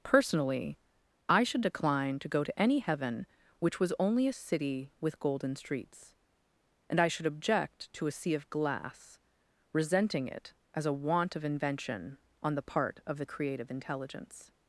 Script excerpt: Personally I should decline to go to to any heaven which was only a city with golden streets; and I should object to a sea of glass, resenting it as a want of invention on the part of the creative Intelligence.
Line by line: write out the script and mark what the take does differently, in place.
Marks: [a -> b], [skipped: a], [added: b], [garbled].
Personally I should decline to go to [skipped: to] any heaven which was only a city with golden streets; and I should object to a sea of glass, resenting it as a want of invention on the part of the creative Intelligence.